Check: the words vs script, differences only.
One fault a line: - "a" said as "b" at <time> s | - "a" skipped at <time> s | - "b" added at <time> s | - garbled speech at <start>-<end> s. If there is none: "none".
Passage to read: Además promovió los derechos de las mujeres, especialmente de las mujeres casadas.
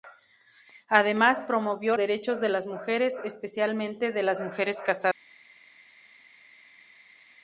- "los" skipped at 1.9 s